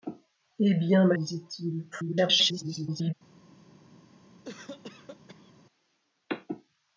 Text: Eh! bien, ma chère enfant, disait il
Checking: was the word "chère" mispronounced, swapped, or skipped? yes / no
yes